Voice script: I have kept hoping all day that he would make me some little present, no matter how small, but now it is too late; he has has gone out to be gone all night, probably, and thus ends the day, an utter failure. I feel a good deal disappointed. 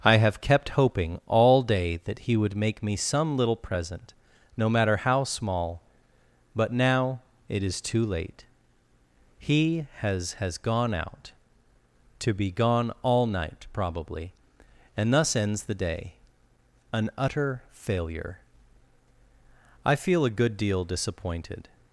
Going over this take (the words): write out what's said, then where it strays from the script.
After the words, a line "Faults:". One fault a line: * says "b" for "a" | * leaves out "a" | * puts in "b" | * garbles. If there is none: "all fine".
I have kept hoping all day that he would make me some little present, no matter how small, but now it is too late; he has has gone out to be gone all night, probably, and thus ends the day, an utter failure. I feel a good deal disappointed.
Faults:
all fine